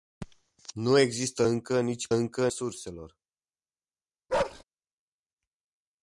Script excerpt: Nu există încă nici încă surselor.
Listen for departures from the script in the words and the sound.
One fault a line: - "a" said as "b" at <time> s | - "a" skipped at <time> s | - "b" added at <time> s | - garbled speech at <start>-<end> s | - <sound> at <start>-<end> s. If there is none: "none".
- bark at 4.3-4.6 s